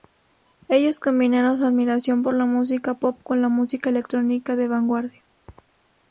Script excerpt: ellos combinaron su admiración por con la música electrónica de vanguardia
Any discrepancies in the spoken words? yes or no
yes